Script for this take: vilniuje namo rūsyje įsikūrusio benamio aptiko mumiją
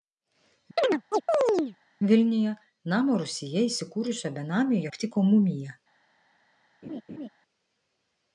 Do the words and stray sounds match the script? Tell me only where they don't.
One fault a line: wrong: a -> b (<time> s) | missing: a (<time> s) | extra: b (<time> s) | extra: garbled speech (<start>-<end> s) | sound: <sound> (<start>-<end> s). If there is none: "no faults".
sound: chirp (0.8-1.8 s)
sound: laugh (6.8-7.3 s)